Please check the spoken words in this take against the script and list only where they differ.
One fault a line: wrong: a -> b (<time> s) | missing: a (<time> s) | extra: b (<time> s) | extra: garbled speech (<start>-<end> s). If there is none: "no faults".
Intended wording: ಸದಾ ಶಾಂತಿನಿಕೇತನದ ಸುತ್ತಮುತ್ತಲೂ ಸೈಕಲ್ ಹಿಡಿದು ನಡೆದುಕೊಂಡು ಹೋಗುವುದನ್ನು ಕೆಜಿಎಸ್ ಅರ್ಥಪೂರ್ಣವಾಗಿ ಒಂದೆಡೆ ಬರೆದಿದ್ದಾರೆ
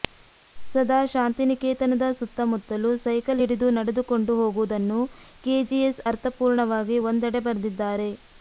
no faults